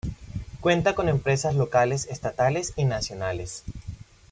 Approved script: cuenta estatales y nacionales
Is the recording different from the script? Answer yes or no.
yes